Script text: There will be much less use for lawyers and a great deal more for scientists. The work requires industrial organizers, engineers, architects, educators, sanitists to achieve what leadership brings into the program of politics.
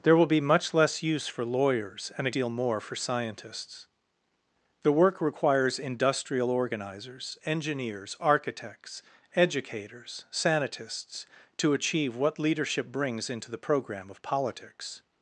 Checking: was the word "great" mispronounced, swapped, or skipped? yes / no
yes